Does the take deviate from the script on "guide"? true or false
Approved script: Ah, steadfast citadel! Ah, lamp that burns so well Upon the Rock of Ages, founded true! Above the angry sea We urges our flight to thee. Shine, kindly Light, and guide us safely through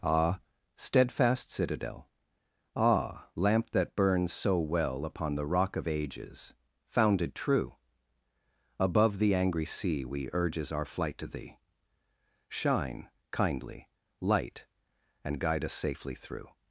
false